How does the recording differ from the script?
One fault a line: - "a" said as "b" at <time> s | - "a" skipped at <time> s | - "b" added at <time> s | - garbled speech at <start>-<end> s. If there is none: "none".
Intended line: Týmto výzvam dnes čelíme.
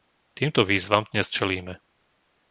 none